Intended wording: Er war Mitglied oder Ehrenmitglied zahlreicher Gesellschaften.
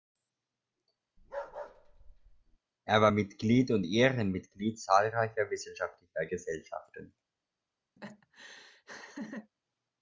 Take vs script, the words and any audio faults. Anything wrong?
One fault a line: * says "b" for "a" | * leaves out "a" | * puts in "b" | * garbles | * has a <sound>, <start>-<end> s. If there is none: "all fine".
* has a bark, 1.2-2.6 s
* says "und" for "oder"
* puts in "wissenschaftlicher"
* has a laugh, 8.0-9.5 s